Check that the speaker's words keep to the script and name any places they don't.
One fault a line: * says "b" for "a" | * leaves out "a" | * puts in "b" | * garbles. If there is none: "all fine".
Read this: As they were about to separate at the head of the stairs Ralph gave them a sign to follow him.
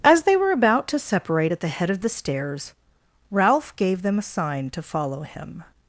all fine